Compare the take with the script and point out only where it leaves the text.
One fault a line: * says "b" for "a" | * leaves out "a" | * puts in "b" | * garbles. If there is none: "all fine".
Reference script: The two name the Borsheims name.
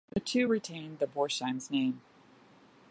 * says "retained" for "name"